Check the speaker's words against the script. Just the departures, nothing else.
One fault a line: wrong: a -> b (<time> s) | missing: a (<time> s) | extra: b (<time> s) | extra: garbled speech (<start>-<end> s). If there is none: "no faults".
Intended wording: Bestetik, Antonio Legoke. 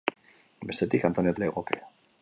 no faults